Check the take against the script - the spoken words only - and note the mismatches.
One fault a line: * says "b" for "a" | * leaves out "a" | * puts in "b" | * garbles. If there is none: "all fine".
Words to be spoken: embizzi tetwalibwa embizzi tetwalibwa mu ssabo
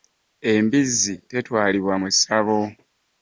* leaves out "embizzi tetwalibwa"